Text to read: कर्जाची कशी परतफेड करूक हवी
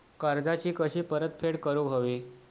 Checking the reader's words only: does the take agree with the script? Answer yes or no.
yes